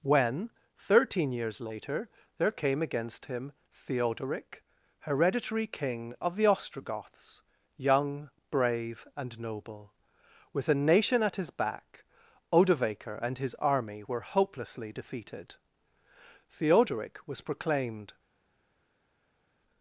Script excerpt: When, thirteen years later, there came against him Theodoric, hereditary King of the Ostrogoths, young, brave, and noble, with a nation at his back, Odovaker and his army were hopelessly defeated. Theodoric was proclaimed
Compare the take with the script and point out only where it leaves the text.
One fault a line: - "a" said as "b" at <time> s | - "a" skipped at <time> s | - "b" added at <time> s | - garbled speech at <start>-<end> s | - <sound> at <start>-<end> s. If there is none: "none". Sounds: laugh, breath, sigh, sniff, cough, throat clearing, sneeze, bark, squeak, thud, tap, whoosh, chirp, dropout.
none